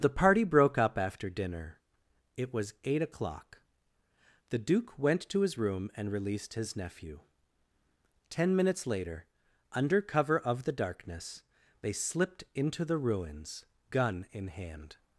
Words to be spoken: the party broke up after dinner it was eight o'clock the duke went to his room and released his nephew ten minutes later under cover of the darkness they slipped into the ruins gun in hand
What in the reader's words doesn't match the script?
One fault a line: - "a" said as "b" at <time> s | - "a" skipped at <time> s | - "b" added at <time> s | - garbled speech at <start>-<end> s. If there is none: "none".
none